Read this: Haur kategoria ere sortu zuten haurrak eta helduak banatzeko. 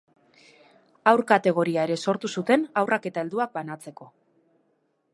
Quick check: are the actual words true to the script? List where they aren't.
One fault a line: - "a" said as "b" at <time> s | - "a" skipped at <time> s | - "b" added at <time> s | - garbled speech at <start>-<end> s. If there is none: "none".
none